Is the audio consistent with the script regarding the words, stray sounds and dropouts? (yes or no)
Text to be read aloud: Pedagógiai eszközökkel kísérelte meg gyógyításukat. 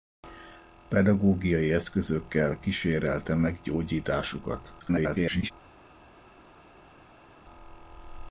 no